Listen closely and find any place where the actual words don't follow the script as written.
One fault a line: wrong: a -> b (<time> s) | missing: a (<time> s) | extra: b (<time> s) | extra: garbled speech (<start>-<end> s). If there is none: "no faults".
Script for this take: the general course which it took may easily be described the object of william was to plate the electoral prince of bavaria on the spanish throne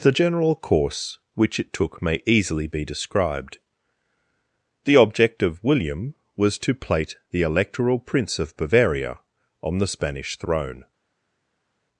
no faults